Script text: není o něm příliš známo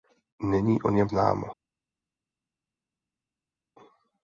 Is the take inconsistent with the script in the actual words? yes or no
yes